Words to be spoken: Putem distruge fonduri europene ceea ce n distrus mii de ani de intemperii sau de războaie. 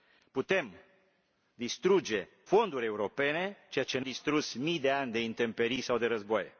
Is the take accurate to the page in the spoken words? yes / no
yes